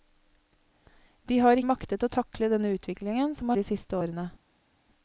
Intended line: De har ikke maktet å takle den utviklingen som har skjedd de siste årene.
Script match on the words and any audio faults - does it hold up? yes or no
no